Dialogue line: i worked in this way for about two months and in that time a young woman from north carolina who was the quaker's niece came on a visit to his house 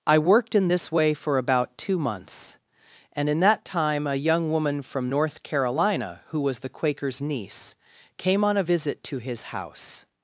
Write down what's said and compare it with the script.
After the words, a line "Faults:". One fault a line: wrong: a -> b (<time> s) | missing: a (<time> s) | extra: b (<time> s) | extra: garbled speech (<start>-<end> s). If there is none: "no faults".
i worked in this way for about two months and in that time a young woman from north carolina who was the quaker's niece came on a visit to his house
Faults:
no faults